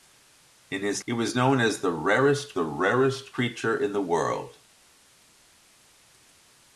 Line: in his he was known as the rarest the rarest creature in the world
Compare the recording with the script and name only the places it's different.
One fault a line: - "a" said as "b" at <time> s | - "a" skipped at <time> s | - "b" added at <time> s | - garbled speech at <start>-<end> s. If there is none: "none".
none